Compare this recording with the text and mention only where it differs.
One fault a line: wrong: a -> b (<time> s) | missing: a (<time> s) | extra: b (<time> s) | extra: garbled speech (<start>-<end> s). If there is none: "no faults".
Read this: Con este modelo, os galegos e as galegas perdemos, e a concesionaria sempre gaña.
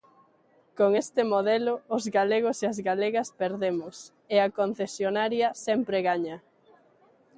no faults